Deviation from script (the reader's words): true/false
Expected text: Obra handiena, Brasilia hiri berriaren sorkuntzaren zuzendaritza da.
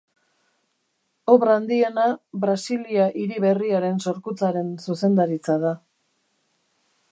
false